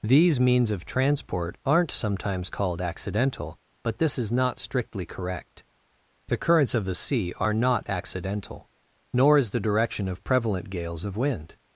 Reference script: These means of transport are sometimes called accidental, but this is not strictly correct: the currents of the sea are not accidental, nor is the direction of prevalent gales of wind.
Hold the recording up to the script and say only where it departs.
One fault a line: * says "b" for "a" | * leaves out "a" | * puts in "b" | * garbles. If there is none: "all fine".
* says "aren't" for "are"